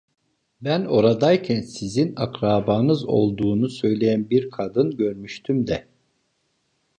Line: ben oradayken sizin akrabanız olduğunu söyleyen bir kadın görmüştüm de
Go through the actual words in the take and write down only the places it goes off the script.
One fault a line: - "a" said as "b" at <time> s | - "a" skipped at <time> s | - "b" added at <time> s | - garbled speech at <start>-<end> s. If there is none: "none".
none